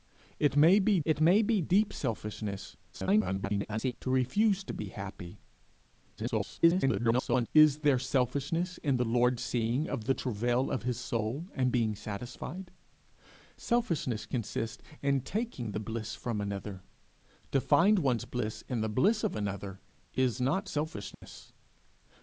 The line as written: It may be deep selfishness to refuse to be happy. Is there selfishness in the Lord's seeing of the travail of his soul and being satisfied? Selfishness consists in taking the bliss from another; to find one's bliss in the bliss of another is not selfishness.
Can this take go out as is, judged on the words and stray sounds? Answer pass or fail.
fail